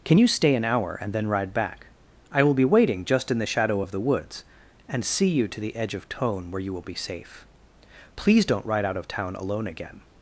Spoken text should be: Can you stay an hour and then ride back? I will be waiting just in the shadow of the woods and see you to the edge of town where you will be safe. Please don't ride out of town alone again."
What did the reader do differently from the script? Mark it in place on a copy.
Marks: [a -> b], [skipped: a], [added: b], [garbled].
Can you stay an hour and then ride back? I will be waiting just in the shadow of the woods and see you to the edge of [town -> tone] where you will be safe. Please don't ride out of town alone again."